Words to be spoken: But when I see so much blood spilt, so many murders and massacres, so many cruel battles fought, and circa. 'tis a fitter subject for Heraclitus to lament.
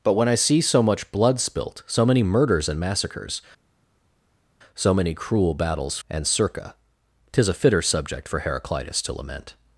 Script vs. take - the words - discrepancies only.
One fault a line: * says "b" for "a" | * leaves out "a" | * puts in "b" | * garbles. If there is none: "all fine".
* leaves out "fought"